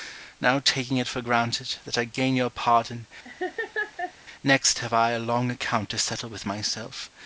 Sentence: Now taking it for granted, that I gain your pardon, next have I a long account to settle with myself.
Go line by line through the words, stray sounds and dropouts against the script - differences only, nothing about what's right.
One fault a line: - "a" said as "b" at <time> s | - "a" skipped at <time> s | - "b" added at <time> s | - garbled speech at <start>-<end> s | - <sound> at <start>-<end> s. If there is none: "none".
- laugh at 3.2-4.1 s